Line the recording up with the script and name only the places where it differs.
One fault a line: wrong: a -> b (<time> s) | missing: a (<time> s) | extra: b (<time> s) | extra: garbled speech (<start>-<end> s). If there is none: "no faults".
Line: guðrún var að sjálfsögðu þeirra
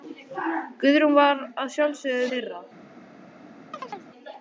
no faults